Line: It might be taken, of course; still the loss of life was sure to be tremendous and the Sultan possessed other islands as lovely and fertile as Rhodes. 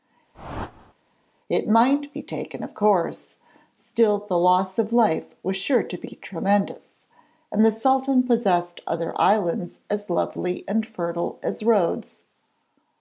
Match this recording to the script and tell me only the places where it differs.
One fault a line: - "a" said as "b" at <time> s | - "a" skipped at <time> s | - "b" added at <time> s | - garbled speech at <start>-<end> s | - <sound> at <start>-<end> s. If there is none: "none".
- whoosh at 0.3-0.9 s